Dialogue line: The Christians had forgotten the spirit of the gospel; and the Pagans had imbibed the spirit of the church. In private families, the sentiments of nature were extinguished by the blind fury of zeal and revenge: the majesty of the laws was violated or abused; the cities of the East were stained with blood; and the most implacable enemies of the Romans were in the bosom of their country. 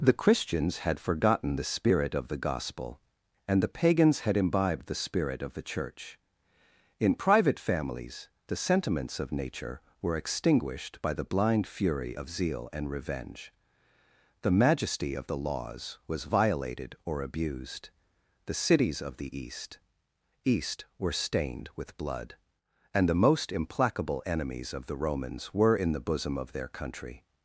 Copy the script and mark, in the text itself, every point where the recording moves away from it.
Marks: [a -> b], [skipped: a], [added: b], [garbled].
The Christians had forgotten the spirit of the gospel; and the Pagans had imbibed the spirit of the church. In private families, the sentiments of nature were extinguished by the blind fury of zeal and revenge: the majesty of the laws was violated or abused; the cities of the East [added: East] were stained with blood; and the most implacable enemies of the Romans were in the bosom of their country.